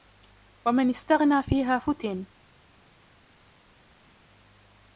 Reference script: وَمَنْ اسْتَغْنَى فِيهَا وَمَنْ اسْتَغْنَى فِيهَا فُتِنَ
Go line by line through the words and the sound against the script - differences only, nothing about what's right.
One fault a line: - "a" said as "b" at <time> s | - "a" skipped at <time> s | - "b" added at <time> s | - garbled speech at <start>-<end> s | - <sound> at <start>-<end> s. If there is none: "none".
- "وَمَنْ اسْتَغْنَى فِيهَا" skipped at 1.8 s